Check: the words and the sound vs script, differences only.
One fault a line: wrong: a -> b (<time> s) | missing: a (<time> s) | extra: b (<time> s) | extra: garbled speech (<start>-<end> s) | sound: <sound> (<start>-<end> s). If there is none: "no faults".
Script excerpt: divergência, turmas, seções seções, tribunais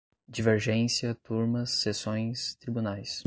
missing: seções (2.5 s)